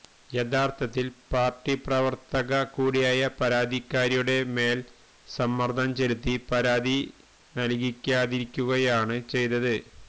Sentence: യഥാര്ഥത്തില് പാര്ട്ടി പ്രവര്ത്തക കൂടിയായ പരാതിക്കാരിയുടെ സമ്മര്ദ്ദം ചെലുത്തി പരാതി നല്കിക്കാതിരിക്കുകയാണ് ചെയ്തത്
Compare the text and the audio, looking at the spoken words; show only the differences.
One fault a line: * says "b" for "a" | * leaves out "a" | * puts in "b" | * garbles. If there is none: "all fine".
* puts in "മേല്"